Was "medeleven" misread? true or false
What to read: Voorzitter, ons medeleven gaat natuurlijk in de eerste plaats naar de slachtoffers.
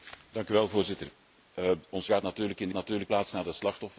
true